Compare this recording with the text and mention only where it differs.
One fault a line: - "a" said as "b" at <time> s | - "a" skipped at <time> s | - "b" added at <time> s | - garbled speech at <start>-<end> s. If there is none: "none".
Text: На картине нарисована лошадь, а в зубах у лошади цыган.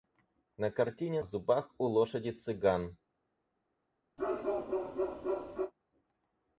- "нарисована лошадь а" skipped at 1.2 s